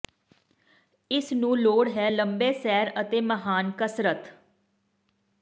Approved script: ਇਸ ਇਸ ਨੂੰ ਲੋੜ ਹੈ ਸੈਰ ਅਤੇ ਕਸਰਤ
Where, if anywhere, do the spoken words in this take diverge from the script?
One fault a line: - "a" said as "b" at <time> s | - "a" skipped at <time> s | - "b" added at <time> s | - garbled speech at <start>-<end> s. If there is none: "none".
- "ਇਸ" skipped at 1.3 s
- "ਲੰਬੇ" added at 2.1 s
- "ਮਹਾਨ" added at 3.2 s